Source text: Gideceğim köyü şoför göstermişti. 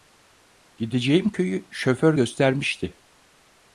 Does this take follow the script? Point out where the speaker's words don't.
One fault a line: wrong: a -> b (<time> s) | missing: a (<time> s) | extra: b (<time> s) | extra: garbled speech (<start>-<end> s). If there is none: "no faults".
no faults